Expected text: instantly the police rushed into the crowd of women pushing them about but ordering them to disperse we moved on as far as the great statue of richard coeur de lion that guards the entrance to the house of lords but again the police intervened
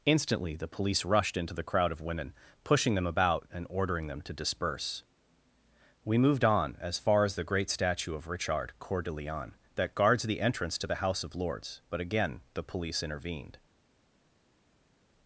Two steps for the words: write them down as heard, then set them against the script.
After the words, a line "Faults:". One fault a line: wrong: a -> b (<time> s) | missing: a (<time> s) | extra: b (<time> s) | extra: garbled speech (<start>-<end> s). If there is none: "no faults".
instantly the police rushed into the crowd of women pushing them about and ordering them to disperse we moved on as far as the great statue of richard coeur de lion that guards the entrance to the house of lords but again the police intervened
Faults:
wrong: but -> and (3.5 s)